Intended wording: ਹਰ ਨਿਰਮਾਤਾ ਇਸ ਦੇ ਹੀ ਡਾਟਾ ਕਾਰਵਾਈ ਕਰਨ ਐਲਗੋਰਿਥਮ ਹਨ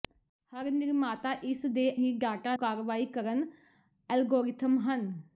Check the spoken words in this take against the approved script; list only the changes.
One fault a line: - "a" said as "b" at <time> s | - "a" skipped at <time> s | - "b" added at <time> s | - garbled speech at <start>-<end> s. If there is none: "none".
none